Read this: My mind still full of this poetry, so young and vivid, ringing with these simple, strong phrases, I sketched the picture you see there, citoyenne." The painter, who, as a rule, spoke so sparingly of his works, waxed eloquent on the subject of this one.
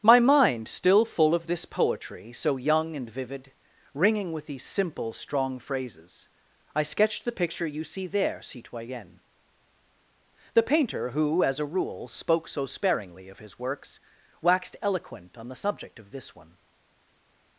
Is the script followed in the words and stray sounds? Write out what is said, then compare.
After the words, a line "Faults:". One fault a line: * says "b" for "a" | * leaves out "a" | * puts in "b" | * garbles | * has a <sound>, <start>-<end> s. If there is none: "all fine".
My mind still full of this poetry, so young and vivid, ringing with these simple, strong phrases, I sketched the picture you see there, citoyenne." The painter, who, as a rule, spoke so sparingly of his works, waxed eloquent on the subject of this one.
Faults:
all fine